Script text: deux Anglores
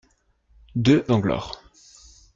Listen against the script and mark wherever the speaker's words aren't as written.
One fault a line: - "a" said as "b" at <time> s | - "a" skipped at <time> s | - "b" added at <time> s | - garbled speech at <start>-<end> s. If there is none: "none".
none